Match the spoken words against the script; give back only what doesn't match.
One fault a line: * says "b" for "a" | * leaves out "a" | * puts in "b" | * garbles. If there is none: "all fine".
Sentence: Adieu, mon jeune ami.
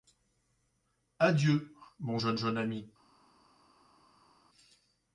* puts in "jeune"